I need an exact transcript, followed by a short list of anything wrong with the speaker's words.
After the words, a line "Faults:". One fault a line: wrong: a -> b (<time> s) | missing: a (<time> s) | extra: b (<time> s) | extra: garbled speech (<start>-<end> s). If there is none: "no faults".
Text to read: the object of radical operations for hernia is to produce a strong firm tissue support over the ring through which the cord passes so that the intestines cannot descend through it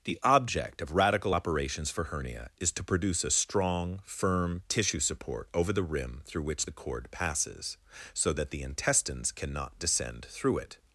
the object of radical operations for hernia is to produce a strong firm tissue support over the rim through which the cord passes so that the intestines cannot descend through it
Faults:
wrong: ring -> rim (5.8 s)